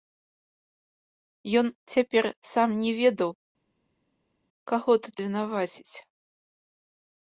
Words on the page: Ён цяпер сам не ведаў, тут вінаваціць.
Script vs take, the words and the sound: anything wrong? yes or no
yes